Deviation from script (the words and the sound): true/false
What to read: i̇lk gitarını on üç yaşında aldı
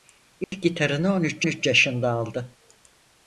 true